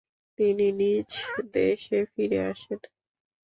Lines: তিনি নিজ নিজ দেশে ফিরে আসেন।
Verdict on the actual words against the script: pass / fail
fail